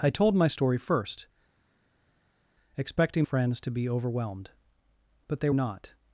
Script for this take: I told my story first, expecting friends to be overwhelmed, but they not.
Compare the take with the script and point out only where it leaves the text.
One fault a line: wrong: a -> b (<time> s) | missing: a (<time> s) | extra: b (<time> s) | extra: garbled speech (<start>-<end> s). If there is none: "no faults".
no faults